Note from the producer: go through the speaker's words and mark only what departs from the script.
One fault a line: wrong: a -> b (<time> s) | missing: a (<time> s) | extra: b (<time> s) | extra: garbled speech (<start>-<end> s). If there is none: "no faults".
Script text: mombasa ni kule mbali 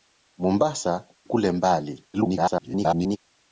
missing: ni (1.1 s)
extra: garbled speech (2.1-3.2 s)